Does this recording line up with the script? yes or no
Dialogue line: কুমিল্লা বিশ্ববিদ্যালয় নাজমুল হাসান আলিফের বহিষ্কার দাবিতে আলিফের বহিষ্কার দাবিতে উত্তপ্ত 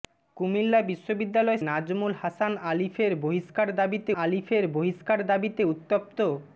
yes